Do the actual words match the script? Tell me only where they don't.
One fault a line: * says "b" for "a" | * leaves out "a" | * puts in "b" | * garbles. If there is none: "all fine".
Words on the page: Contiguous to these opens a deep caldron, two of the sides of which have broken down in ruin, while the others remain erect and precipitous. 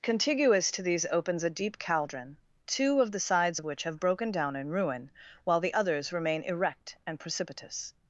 all fine